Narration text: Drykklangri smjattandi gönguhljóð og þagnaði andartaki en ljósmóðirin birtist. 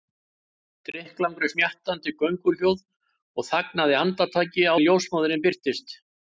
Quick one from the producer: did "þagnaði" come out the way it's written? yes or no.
yes